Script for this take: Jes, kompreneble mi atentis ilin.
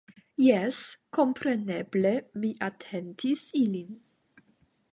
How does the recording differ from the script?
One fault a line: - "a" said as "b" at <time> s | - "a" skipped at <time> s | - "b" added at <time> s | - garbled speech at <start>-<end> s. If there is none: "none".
none